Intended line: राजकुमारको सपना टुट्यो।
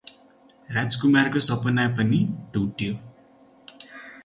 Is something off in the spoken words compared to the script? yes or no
yes